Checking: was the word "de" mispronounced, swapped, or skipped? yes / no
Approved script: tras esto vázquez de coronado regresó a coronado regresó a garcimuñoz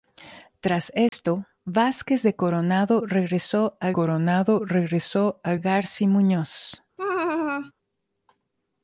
no